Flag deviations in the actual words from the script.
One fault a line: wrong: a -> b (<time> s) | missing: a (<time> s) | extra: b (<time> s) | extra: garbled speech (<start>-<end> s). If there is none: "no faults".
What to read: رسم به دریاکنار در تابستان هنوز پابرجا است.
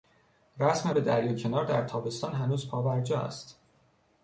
no faults